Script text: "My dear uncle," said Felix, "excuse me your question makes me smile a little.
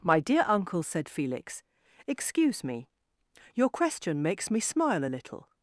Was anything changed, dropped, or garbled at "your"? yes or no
no